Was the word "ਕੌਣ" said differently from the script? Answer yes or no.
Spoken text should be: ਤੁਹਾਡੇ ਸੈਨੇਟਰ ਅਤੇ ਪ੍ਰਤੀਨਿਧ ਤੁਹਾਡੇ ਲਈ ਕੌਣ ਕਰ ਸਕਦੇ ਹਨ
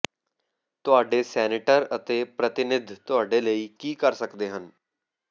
yes